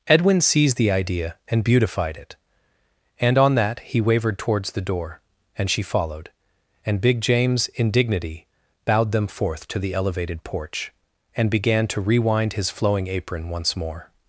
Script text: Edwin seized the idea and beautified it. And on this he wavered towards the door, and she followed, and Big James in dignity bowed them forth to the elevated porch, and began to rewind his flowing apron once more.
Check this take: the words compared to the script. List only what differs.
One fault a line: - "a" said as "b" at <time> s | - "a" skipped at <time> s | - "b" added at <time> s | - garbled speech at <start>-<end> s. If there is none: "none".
- "this" said as "that" at 3.5 s